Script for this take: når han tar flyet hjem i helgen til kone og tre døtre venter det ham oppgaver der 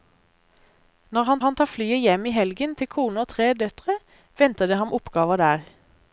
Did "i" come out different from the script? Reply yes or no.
no